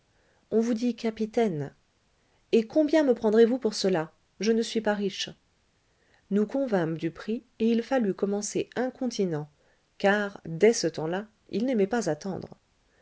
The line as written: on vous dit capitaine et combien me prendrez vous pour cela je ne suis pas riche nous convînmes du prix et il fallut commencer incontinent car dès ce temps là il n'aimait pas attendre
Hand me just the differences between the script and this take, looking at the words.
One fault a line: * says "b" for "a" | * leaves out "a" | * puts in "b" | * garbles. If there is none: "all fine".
all fine